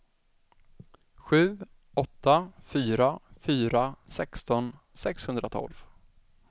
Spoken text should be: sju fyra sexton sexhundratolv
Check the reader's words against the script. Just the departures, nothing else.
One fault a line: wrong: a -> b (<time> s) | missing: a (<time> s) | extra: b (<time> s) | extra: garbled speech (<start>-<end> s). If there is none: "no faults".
extra: åtta fyra (1.9 s)